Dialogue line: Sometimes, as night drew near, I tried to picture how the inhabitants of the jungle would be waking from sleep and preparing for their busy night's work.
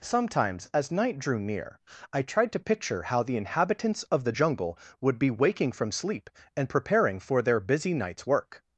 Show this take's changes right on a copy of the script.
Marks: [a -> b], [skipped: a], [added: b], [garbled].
Sometimes, as night drew near, I tried to picture how the inhabitants of the jungle would be waking from sleep and preparing for their busy night's work.